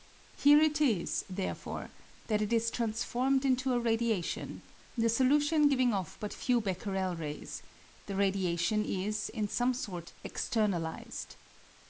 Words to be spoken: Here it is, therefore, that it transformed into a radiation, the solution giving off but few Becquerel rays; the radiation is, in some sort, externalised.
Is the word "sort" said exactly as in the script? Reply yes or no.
yes